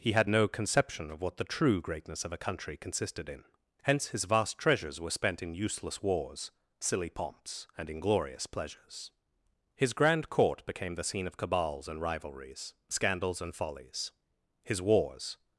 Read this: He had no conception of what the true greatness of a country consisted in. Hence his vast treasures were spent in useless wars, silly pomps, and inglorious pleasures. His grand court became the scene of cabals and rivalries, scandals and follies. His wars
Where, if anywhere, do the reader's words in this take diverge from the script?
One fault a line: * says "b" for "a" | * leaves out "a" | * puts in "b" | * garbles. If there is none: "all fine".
all fine